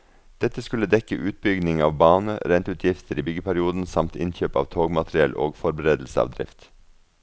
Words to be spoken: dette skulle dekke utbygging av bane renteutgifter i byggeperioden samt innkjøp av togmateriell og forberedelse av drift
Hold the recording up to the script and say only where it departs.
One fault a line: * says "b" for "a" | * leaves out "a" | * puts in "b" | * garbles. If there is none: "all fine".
all fine